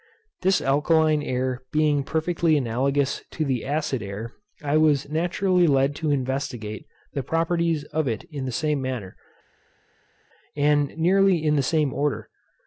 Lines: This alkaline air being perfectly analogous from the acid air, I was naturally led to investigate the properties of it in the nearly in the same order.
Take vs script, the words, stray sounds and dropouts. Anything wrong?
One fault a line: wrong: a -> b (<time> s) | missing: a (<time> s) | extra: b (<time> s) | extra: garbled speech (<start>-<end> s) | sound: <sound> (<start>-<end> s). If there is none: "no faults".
wrong: from -> to (3.3 s)
extra: same manner and (8.5 s)